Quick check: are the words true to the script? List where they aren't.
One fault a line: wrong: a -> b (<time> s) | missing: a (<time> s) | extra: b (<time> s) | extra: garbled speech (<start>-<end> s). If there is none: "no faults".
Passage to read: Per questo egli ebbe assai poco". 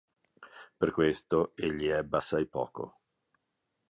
no faults